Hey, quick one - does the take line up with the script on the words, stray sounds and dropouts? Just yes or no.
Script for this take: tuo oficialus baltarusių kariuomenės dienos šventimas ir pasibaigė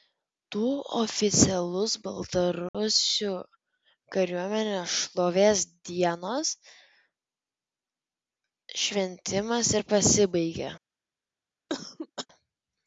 no